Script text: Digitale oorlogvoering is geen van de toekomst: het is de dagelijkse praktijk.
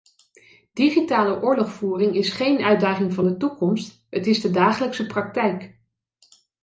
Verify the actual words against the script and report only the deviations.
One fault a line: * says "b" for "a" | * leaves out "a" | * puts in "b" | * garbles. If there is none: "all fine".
* puts in "uitdaging"